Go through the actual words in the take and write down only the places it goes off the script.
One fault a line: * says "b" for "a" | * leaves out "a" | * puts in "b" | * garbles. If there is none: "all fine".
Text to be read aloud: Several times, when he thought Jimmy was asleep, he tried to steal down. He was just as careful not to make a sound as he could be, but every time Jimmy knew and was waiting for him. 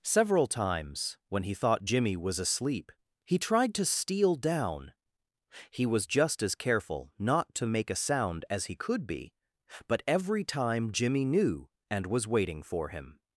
all fine